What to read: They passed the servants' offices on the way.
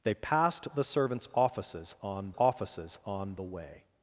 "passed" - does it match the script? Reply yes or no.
yes